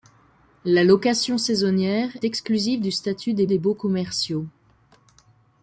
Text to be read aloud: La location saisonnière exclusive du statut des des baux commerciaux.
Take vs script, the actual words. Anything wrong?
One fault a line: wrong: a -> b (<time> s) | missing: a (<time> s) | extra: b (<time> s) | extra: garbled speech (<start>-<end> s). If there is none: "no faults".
no faults